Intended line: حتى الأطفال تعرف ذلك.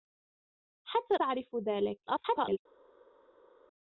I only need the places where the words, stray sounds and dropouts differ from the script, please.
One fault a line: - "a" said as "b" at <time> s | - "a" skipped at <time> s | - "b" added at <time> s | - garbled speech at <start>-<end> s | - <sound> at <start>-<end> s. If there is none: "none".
- "الأطفال" skipped at 1.1 s
- garbled speech at 2.1-2.6 s